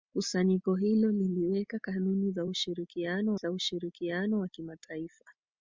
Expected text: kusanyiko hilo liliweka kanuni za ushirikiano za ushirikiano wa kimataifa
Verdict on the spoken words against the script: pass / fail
pass